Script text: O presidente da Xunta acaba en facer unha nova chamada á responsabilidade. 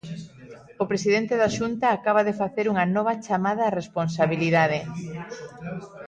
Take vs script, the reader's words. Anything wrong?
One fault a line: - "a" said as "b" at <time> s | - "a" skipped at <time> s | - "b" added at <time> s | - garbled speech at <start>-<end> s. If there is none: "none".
- "en" said as "de" at 2.3 s